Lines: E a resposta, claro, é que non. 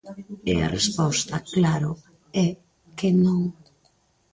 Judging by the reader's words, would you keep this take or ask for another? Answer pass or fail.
pass